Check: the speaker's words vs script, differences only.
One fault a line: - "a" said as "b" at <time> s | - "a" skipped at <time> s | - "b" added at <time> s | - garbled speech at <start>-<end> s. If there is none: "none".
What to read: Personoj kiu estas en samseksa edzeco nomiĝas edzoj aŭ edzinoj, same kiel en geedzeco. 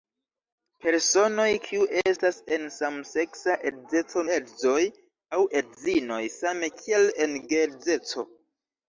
- "nomiĝas" skipped at 4.2 s